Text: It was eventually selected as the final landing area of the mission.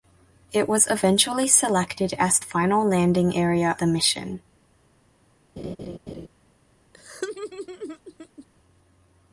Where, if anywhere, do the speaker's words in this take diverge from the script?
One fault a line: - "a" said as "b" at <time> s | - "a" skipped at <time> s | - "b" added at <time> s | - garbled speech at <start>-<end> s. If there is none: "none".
- "the" skipped at 2.4 s
- "of" skipped at 3.8 s